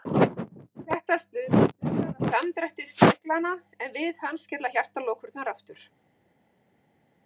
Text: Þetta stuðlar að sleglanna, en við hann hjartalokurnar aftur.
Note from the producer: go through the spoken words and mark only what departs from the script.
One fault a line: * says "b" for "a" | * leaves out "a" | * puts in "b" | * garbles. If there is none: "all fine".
* puts in "samdrætti"
* puts in "skella"